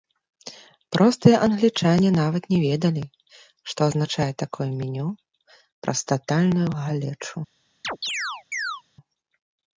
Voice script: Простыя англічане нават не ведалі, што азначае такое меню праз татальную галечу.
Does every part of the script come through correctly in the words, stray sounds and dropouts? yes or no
no